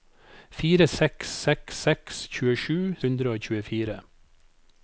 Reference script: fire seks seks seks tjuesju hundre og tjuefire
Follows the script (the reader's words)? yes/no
yes